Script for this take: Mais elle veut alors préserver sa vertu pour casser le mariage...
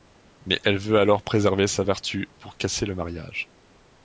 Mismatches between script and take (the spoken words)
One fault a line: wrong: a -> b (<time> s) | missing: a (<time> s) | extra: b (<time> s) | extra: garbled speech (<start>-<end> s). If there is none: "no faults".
no faults